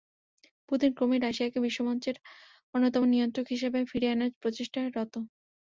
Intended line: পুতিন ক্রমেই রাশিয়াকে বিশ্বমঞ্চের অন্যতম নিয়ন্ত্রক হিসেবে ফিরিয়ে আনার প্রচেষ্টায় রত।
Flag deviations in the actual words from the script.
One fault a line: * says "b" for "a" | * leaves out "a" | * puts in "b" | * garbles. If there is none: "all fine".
all fine